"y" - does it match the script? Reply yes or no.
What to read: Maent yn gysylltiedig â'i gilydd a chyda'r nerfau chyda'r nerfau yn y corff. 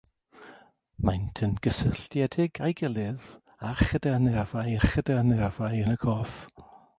yes